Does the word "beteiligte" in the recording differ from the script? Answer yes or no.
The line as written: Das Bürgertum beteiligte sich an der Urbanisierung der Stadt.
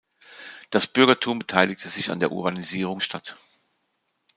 no